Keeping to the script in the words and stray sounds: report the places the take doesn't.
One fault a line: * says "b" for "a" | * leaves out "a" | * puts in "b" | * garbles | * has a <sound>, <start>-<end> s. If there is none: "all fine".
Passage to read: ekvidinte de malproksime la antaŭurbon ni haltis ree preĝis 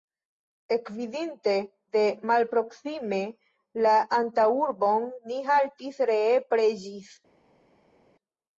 all fine